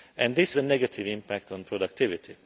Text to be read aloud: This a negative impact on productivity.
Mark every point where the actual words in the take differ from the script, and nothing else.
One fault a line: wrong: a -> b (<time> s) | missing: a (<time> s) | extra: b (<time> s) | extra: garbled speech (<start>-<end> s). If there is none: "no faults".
no faults